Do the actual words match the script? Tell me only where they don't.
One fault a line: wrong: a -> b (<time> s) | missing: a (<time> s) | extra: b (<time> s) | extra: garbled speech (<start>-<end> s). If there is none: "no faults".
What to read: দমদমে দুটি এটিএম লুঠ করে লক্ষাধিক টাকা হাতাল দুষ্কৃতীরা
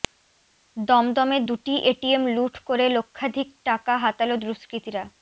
no faults